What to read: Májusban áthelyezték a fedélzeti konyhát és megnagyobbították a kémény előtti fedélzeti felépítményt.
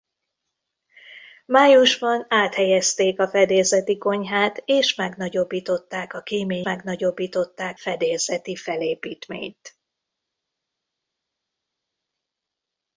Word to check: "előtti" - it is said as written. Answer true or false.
false